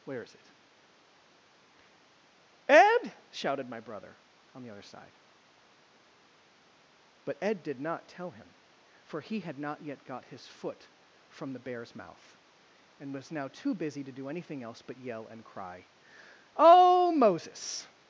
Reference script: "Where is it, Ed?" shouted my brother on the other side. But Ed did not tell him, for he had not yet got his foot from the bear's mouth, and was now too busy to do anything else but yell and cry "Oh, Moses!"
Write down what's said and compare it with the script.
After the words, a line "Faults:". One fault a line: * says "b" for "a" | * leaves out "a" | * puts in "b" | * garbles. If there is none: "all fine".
"Where is it, Ed?" shouted my brother on the other side. But Ed did not tell him, for he had not yet got his foot from the bear's mouth, and was now too busy to do anything else but yell and cry "Oh, Moses!"
Faults:
all fine